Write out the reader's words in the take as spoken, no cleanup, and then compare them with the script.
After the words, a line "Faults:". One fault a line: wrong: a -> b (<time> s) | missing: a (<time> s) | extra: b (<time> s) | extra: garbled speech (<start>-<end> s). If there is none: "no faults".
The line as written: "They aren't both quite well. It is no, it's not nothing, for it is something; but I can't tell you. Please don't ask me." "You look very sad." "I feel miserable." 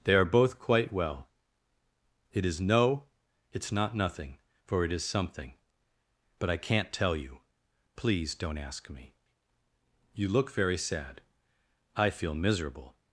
"They are both quite well. It is no, it's not nothing, for it is something; but I can't tell you. Please don't ask me." "You look very sad." "I feel miserable."
Faults:
wrong: aren't -> are (0.1 s)